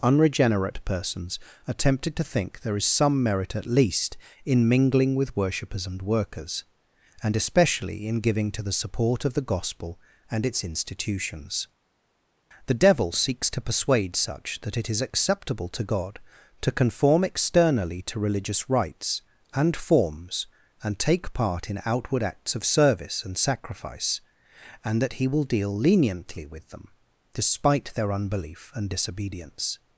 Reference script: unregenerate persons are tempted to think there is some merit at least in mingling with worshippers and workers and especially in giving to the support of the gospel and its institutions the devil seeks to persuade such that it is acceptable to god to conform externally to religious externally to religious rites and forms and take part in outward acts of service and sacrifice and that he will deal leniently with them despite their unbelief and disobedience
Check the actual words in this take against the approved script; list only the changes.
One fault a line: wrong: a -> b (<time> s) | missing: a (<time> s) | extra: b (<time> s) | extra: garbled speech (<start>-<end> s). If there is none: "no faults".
missing: externally to religious (18.7 s)